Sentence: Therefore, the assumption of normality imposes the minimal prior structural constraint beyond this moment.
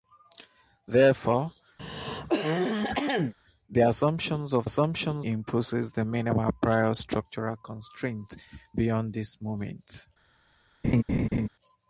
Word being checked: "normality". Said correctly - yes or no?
no